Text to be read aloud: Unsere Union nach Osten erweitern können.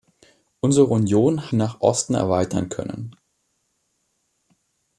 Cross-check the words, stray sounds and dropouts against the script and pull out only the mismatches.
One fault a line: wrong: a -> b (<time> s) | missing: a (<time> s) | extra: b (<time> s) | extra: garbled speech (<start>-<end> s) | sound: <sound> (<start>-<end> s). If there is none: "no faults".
no faults